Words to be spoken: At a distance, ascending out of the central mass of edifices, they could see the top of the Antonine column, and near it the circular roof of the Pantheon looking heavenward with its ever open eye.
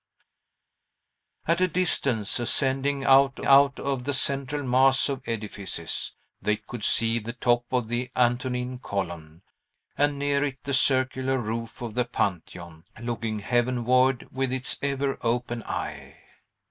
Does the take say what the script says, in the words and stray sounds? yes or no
no